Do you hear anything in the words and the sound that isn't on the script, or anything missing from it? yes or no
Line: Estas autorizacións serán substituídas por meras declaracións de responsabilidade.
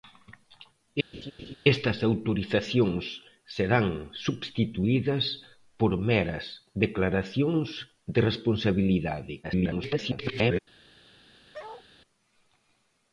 yes